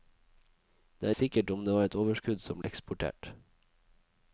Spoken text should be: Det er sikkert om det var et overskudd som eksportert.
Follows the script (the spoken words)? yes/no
yes